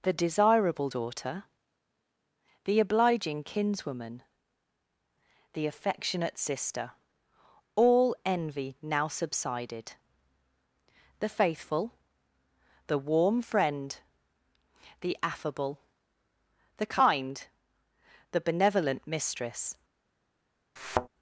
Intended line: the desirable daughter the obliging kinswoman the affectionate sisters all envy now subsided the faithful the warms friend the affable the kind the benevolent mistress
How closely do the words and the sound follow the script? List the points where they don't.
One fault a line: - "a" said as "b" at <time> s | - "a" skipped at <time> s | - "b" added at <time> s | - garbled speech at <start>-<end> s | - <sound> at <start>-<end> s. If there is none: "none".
- "sisters" said as "sister" at 6.4 s
- "warms" said as "warm" at 13.0 s
- thud at 20.8-21.1 s